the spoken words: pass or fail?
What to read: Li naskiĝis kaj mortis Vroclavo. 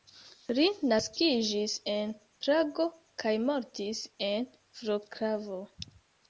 fail